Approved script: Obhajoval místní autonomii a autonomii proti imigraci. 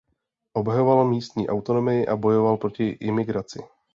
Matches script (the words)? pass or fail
fail